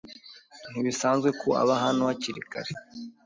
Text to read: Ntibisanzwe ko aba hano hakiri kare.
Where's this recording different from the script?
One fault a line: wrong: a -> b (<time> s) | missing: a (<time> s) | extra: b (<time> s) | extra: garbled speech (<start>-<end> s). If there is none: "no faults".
no faults